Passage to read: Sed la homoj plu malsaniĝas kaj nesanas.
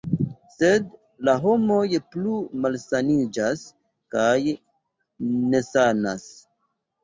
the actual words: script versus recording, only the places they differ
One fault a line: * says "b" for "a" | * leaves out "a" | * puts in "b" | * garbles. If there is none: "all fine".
all fine